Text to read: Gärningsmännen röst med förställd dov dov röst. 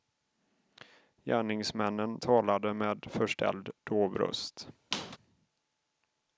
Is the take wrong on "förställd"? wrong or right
right